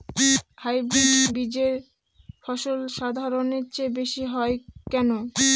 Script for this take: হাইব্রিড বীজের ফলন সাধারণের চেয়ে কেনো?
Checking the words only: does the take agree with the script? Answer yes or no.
no